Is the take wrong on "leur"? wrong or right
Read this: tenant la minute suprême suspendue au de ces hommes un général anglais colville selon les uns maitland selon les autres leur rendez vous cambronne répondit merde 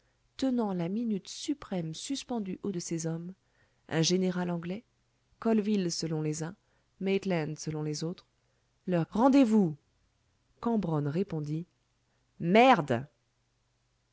right